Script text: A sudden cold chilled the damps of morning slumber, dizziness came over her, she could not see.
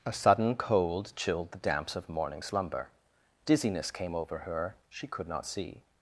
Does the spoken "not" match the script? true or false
true